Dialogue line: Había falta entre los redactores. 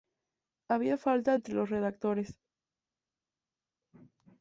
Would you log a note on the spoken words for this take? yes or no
no